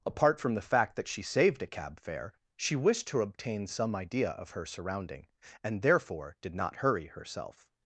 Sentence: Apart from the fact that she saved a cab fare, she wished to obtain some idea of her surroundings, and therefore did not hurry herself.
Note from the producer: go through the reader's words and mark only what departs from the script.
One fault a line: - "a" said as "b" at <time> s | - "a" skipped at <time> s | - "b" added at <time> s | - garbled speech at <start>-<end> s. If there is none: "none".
- "surroundings" said as "surrounding" at 4.7 s